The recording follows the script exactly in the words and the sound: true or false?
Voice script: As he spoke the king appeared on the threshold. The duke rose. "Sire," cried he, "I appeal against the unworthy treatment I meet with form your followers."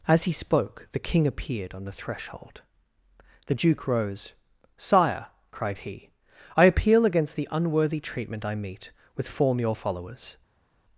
true